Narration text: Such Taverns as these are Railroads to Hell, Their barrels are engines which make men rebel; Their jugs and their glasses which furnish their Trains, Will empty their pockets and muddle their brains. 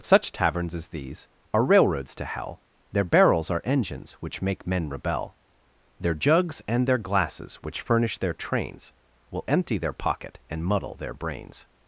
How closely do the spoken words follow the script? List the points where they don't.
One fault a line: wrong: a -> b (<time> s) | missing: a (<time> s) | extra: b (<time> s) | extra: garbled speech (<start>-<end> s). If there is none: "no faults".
wrong: pockets -> pocket (9.9 s)